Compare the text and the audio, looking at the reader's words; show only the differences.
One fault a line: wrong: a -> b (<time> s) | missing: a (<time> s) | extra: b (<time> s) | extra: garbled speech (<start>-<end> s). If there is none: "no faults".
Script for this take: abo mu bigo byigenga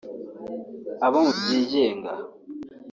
missing: bigo (1.3 s)